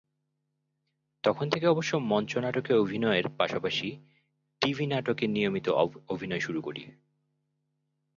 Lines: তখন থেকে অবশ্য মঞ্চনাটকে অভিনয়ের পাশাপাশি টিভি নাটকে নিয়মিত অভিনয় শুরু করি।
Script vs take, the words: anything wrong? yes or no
no